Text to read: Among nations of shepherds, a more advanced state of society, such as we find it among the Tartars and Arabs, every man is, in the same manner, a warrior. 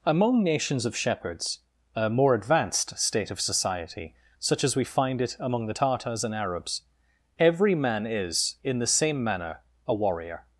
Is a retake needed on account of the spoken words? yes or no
no